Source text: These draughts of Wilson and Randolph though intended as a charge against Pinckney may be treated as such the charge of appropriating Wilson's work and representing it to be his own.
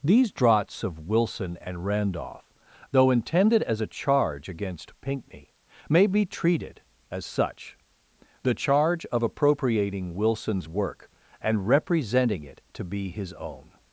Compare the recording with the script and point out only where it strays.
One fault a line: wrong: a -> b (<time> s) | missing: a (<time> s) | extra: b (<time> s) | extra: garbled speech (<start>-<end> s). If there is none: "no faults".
no faults